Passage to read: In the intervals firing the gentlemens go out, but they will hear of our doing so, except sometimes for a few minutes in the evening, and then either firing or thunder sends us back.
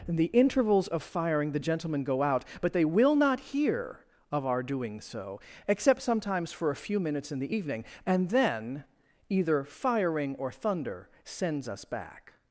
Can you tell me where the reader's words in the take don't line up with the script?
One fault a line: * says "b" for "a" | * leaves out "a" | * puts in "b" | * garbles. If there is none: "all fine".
* puts in "of"
* says "gentlemen" for "gentlemens"
* puts in "not"